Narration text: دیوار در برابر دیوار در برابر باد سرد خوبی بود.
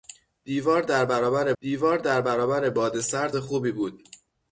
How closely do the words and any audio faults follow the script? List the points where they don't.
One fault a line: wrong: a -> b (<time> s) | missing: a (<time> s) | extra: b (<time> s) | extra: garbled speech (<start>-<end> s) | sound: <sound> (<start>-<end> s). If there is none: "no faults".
no faults